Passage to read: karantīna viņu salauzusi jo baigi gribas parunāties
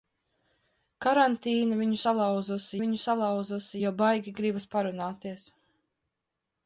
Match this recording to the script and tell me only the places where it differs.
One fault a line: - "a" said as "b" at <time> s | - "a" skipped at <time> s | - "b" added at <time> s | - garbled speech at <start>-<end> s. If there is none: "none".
- "viņu salauzusi" added at 2.8 s